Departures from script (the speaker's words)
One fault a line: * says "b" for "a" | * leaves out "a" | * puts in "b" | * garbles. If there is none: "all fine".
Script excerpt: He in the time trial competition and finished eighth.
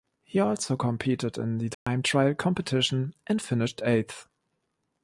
* puts in "also competed"